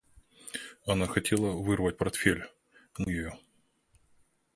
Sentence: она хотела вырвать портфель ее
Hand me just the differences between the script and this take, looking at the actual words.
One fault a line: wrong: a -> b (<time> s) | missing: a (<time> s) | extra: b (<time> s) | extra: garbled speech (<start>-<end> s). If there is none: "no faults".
no faults